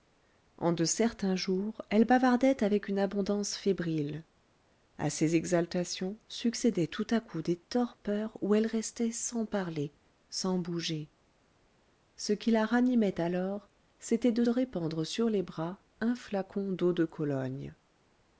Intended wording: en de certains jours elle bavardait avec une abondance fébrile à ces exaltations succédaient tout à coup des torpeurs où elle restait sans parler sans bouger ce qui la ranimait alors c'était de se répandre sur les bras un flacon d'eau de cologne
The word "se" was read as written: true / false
false